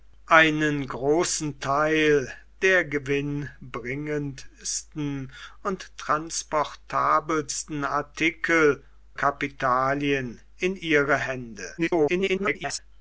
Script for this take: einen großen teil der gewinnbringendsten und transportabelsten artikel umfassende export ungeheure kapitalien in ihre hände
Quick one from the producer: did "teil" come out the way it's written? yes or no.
yes